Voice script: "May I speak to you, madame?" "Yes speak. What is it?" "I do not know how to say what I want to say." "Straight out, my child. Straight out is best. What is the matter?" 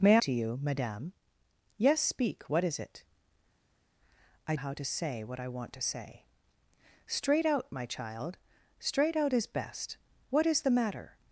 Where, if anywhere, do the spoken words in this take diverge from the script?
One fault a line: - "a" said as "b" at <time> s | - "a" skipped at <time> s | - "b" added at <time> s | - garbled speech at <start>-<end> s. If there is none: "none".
- "I speak" skipped at 0.2 s
- "do not know" skipped at 4.5 s